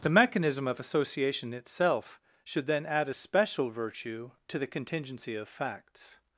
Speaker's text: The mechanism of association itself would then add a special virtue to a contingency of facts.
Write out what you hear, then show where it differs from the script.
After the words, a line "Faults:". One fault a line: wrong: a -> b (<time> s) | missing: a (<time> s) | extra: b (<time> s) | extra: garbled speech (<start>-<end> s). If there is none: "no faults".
The mechanism of association itself should then add a special virtue to the contingency of facts.
Faults:
wrong: would -> should (2.4 s)
wrong: a -> the (4.6 s)